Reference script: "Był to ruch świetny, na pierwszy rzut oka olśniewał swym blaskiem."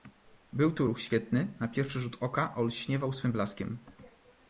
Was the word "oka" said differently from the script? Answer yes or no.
no